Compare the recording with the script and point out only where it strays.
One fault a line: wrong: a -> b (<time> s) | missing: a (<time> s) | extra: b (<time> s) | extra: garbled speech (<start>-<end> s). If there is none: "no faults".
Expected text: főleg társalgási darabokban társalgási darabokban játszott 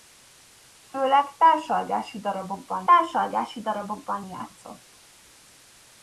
no faults